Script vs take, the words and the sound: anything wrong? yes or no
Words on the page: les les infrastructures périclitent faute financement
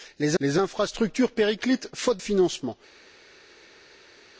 no